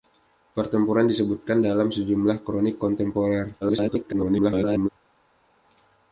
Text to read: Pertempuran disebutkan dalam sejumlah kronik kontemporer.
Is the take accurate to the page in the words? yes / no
no